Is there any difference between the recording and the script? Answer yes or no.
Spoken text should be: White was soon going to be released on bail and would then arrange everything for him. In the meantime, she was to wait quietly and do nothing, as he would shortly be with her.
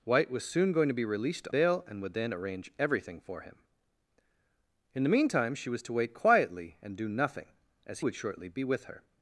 yes